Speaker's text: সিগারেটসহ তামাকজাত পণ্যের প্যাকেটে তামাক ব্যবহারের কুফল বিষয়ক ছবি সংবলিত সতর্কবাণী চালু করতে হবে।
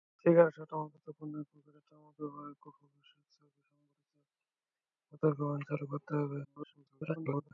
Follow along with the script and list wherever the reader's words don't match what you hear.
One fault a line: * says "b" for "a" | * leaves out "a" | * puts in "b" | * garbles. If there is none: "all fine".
* garbles